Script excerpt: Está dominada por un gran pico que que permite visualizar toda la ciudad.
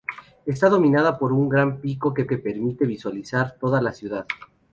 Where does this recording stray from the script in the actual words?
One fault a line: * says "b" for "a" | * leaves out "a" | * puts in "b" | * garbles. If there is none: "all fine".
all fine